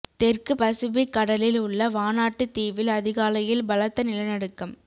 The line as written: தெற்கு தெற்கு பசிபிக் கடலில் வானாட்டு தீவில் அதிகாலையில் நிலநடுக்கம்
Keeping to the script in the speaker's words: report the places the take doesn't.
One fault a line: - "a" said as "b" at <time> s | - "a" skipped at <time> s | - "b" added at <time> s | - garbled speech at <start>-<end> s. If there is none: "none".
- "தெற்கு" skipped at 0.5 s
- "உள்ள" added at 1.6 s
- "பலத்த" added at 3.7 s